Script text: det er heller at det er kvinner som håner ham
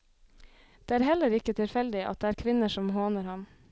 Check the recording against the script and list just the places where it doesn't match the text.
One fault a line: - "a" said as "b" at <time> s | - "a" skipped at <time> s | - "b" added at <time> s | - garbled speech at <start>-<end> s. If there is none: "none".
- "ikke tilfeldig" added at 1.4 s